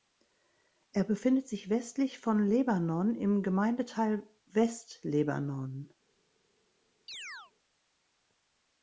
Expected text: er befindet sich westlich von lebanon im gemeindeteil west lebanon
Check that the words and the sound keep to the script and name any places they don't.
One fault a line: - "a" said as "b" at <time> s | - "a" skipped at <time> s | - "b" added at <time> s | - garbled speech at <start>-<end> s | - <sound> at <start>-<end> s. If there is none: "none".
- chirp at 7.1-7.5 s